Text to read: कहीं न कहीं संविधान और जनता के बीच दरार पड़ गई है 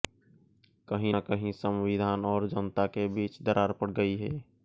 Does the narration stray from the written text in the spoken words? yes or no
no